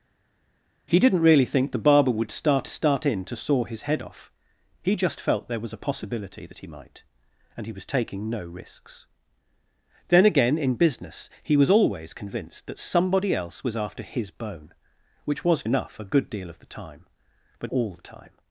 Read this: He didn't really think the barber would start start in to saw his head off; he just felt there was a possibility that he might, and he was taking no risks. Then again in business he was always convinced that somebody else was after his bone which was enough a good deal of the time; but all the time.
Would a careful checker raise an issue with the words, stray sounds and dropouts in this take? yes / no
no